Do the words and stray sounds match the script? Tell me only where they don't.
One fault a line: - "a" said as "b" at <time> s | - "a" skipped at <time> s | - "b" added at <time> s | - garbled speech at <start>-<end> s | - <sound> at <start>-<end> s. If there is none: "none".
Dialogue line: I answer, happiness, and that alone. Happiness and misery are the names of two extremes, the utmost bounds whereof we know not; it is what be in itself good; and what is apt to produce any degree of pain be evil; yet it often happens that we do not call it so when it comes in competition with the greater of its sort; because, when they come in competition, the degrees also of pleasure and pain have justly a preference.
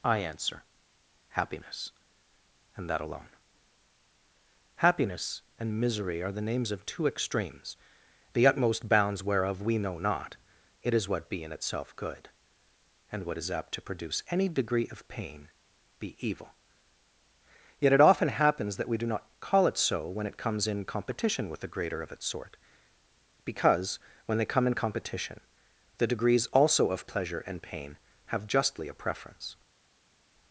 none